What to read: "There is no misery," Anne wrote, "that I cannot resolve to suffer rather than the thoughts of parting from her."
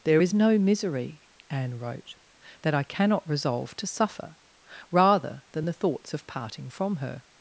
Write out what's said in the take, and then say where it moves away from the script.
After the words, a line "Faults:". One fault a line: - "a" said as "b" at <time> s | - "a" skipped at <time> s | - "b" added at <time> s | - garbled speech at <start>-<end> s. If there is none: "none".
"There is no misery," Anne wrote, "that I cannot resolve to suffer rather than the thoughts of parting from her."
Faults:
none